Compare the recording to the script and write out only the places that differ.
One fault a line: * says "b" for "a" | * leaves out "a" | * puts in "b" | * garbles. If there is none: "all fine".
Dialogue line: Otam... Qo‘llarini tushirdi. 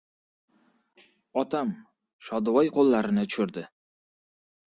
* puts in "Shodivoy"